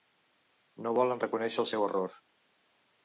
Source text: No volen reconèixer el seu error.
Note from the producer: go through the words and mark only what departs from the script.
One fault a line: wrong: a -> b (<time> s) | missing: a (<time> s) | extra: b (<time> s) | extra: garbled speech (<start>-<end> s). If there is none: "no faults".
no faults